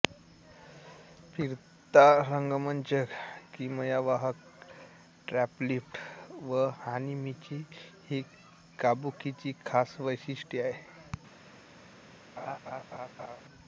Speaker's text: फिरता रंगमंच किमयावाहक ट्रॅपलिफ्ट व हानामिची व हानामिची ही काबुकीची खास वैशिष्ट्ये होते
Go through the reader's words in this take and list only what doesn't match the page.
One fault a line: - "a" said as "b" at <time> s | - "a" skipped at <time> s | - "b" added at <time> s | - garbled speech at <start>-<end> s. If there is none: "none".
- "व हानामिची" skipped at 7.6 s
- "होते" said as "आहेत" at 10.6 s